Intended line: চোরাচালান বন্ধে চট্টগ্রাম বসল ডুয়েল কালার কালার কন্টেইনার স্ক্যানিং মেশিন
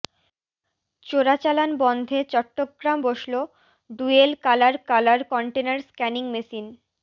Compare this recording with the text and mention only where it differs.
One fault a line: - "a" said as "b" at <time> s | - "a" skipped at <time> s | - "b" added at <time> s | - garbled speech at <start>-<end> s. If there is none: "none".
none